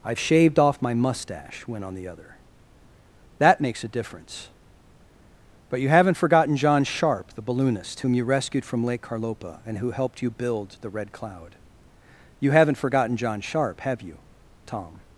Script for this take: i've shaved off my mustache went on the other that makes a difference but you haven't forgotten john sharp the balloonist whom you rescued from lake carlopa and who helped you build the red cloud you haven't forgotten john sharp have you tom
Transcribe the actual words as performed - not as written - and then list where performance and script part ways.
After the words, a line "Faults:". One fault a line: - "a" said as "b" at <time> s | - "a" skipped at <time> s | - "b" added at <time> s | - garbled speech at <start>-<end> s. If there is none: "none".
i've shaved off my mustache went on the other that makes a difference but you haven't forgotten john sharp the balloonist whom you rescued from lake carlopa and who helped you build the red cloud you haven't forgotten john sharp have you tom
Faults:
none